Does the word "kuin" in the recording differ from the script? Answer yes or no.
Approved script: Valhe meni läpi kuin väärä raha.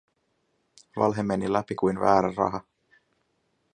no